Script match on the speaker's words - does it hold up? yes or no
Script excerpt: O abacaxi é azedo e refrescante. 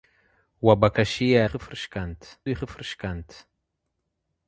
no